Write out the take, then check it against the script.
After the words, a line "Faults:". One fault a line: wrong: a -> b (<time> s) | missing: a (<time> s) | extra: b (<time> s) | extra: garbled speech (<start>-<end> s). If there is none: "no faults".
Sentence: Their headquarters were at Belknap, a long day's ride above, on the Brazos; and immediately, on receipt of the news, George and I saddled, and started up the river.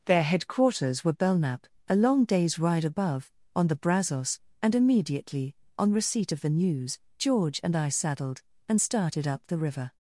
Their headquarters were Belknap, a long day's ride above, on the Brazos; and immediately, on receipt of the news, George and I saddled, and started up the river.
Faults:
missing: at (1.1 s)